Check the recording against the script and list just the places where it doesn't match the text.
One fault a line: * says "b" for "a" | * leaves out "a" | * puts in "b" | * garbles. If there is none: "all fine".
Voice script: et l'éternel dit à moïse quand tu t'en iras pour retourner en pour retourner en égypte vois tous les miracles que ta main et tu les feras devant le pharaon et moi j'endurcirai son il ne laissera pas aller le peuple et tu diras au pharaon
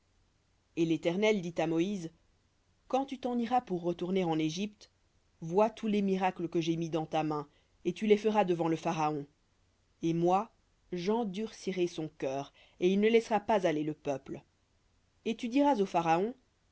* leaves out "pour retourner en"
* puts in "j'ai mis dans"
* puts in "cœur et"